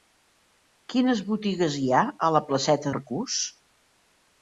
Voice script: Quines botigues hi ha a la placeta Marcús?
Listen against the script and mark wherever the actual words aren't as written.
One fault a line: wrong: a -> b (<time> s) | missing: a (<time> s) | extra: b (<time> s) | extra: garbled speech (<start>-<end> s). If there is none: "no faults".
no faults